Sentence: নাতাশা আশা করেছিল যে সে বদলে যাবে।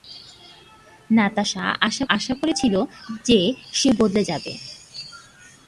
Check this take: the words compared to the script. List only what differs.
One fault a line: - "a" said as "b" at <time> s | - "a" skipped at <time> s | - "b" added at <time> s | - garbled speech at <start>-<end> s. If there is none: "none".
- "আশা" added at 2.1 s